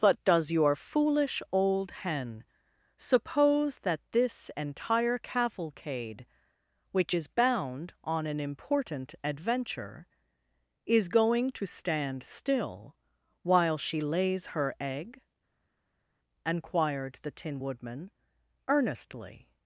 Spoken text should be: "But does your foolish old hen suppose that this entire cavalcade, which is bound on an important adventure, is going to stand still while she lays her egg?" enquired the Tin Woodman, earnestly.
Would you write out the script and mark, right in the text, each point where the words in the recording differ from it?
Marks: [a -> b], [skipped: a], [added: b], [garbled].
"But does your foolish old hen suppose that this entire cavalcade, which is bound on an important adventure, is going to stand still while she lays her egg?" enquired the Tin Woodman, earnestly.